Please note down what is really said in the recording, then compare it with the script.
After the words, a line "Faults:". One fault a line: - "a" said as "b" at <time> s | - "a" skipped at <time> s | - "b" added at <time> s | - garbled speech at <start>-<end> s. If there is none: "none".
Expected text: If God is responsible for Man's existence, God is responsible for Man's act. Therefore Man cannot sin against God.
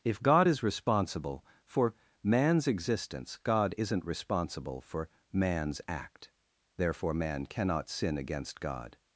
If God is responsible for Man's existence, God isn't responsible for Man's act. Therefore Man cannot sin against God.
Faults:
- "is" said as "isn't" at 3.8 s